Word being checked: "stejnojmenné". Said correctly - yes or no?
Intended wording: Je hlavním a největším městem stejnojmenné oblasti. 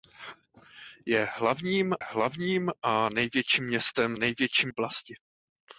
no